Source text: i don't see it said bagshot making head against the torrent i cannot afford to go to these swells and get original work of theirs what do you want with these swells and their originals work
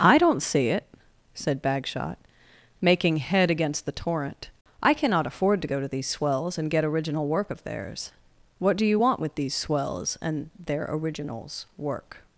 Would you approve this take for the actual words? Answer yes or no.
yes